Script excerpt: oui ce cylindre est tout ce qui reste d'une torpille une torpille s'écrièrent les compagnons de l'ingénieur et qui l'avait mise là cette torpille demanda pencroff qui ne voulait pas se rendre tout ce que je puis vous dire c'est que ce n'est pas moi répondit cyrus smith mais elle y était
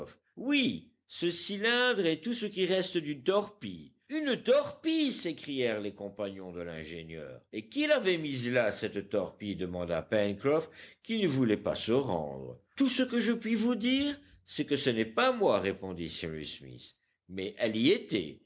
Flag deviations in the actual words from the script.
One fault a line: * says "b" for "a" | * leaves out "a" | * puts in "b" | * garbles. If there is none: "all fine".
all fine